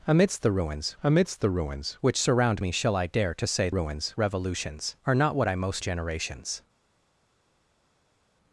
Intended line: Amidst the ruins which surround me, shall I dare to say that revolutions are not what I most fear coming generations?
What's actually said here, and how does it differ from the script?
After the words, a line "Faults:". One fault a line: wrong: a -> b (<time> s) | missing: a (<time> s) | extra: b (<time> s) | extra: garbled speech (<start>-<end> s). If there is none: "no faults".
Amidst the ruins amidst the ruins which surround me, shall I dare to say ruins revolutions are not what I most generations?
Faults:
extra: amidst the ruins (1.0 s)
wrong: that -> ruins (3.7 s)
missing: fear coming (5.8 s)